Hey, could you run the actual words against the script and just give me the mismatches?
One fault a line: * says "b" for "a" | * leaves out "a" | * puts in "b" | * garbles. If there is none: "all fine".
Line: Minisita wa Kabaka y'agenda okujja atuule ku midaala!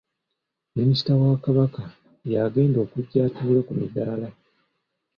all fine